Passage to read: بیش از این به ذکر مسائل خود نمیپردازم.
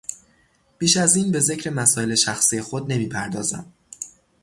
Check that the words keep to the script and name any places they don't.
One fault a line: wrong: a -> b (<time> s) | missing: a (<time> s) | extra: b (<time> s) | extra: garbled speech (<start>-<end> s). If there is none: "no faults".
extra: شخصی (2.1 s)